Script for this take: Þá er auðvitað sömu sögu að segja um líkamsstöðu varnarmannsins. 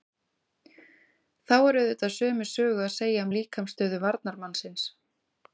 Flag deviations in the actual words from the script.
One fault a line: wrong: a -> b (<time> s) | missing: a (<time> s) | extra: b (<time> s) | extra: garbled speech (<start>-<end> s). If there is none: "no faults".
no faults